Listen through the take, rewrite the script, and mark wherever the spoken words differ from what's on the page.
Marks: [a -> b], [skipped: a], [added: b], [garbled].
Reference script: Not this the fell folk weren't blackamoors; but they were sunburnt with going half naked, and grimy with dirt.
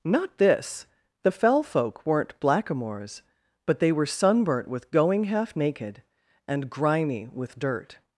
Not this the fell folk weren't blackamoors; but they were sunburnt with going half naked, and grimy with dirt.